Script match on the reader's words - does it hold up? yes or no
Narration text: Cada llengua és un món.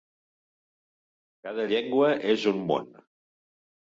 yes